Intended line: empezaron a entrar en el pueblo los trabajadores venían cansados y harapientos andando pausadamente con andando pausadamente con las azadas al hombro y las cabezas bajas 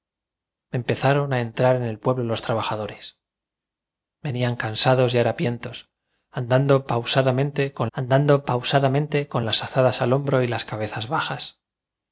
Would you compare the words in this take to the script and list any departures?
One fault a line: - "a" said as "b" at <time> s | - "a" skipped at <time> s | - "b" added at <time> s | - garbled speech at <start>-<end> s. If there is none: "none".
none